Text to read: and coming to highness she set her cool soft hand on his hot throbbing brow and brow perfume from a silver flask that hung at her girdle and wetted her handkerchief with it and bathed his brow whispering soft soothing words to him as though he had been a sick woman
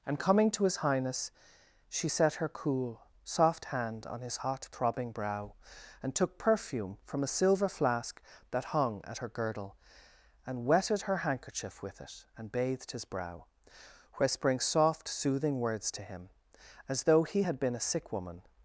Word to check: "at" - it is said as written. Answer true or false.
true